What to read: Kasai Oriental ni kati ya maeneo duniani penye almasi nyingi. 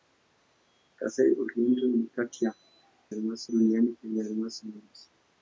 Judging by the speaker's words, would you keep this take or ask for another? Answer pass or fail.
fail